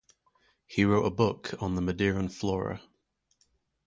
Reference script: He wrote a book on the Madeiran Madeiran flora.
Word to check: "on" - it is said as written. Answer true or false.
true